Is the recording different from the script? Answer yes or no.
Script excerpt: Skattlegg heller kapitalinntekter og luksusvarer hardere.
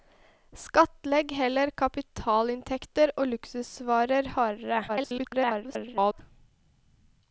yes